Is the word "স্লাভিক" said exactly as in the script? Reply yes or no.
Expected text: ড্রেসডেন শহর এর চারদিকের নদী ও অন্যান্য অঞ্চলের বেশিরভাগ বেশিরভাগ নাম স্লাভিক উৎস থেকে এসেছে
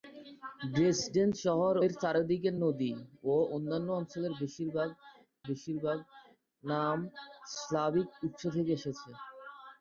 yes